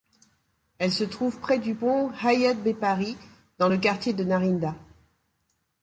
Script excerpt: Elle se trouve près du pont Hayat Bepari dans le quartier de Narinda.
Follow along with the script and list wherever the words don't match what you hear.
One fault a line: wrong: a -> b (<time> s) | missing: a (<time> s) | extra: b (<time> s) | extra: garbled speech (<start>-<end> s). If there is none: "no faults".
no faults